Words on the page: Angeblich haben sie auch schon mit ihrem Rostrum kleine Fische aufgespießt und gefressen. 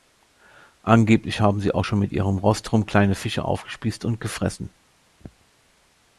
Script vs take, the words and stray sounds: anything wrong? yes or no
yes